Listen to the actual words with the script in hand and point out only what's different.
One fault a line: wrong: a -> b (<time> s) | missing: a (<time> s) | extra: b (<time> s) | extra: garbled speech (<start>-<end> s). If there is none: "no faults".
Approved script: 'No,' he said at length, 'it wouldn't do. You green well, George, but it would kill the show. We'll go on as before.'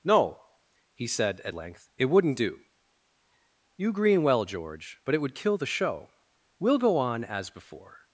no faults